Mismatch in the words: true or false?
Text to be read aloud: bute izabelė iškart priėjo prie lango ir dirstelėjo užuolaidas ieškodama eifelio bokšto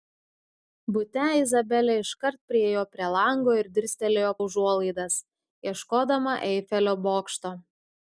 false